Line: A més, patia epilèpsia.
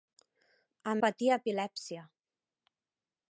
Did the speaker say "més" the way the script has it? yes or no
no